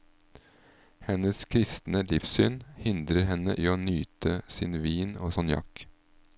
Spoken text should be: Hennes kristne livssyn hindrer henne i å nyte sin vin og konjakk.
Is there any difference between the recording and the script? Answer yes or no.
no